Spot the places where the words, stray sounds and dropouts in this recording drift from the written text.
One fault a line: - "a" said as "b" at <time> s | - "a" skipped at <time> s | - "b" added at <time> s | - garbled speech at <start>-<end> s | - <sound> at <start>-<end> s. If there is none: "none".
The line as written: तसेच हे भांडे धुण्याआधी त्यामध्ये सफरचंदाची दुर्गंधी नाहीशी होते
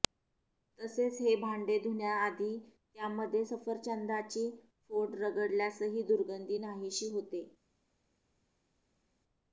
- "फोड रगडल्यासही" added at 4.9 s